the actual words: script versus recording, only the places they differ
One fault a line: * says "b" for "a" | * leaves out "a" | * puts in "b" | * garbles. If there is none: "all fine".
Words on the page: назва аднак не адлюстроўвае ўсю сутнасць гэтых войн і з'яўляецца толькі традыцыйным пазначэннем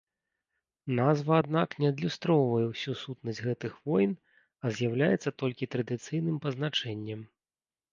* says "а" for "і"